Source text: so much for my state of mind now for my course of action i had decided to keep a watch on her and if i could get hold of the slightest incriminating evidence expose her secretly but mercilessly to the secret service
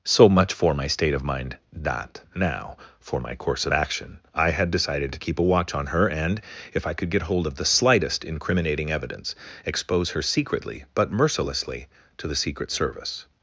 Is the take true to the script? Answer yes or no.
no